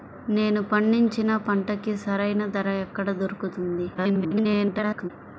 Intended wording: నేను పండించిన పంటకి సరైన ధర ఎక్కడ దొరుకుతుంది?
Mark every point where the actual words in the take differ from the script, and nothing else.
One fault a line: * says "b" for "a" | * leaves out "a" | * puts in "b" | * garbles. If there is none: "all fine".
* garbles